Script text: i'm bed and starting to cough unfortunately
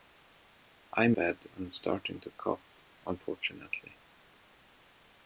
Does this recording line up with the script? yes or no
yes